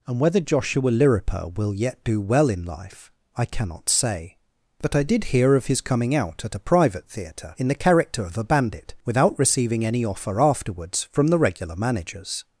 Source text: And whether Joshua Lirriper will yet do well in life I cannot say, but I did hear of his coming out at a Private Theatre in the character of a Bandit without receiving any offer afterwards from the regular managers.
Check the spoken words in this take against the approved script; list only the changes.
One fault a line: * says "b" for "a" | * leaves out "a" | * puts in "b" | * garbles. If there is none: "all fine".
all fine